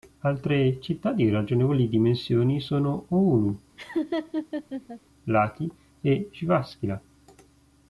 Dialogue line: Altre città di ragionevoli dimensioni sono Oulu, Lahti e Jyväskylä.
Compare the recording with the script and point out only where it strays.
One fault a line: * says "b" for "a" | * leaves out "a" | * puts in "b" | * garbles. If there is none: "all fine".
all fine